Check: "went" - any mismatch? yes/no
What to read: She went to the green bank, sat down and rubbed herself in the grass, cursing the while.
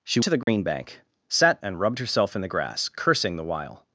yes